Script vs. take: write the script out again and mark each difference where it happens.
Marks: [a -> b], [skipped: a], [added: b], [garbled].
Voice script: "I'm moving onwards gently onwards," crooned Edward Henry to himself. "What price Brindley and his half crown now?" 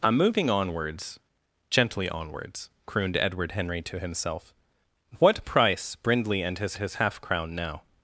"I'm moving onwards gently onwards," crooned Edward Henry to himself. "What price Brindley and his [added: his] half crown now?"